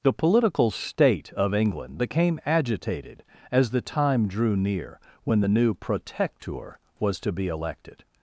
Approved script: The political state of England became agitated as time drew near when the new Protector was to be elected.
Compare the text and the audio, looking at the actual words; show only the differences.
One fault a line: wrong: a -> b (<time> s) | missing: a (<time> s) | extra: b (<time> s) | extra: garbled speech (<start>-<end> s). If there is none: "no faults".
extra: the (3.7 s)